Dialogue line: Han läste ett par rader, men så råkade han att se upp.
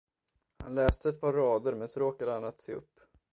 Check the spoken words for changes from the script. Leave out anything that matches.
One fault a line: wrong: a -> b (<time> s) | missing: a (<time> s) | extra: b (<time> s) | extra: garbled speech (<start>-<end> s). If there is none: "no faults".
no faults